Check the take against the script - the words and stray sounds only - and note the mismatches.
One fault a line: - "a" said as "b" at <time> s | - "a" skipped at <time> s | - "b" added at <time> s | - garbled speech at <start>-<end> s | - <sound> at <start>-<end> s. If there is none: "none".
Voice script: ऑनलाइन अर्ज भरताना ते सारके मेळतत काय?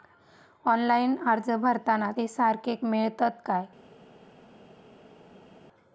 none